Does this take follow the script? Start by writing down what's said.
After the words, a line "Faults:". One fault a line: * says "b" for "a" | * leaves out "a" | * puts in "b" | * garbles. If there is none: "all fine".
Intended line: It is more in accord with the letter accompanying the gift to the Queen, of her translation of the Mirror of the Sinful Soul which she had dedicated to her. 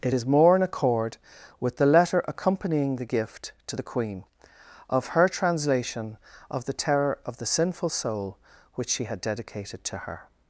It is more in accord with the letter accompanying the gift to the Queen, of her translation of the Terror of the Sinful Soul which she had dedicated to her.
Faults:
* says "Terror" for "Mirror"